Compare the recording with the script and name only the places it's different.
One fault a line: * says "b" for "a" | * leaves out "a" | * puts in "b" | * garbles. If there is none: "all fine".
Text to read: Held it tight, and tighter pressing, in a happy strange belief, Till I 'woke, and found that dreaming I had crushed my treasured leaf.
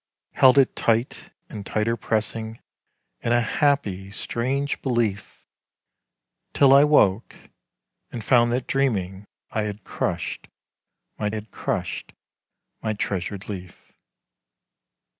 * puts in "had crushed my"